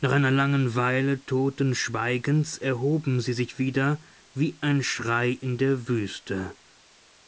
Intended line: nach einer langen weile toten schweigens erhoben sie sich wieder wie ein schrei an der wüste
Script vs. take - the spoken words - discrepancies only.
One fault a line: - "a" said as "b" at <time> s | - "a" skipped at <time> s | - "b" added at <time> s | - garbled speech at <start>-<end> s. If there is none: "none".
- "an" said as "in" at 5.3 s